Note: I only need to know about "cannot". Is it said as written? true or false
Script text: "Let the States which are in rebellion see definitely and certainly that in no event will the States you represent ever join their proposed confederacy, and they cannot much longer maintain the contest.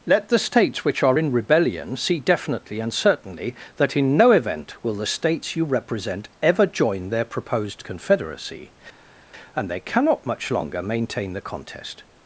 true